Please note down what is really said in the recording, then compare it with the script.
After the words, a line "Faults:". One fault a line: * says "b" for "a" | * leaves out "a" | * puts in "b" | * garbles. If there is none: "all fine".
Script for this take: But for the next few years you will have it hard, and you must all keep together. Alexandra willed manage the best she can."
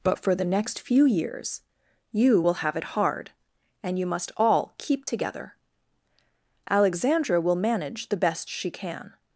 But for the next few years you will have it hard, and you must all keep together. Alexandra will manage the best she can."
Faults:
* says "will" for "willed"